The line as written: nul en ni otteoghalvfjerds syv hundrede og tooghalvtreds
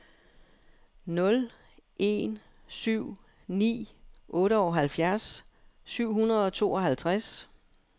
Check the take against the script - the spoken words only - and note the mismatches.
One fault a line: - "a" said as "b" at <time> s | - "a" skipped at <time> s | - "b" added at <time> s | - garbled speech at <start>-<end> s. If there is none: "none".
- "syv" added at 2.7 s